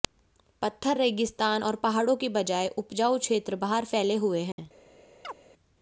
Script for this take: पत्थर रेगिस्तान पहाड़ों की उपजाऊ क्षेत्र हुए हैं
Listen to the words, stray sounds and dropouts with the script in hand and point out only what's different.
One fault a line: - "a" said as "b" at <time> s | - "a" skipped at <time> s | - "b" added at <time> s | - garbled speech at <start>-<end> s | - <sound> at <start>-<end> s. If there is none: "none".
- "और" added at 1.6 s
- "बजाय" added at 2.3 s
- "बाहर फैले" added at 3.6 s
- dropout at 4.5-4.6 s
- chirp at 5.2-5.4 s